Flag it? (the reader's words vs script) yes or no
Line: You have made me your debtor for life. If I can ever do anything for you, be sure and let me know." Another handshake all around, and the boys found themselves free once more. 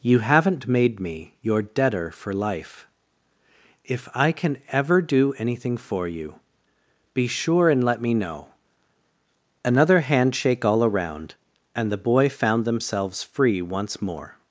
yes